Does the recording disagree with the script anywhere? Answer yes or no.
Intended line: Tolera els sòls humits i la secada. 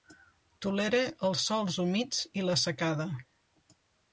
no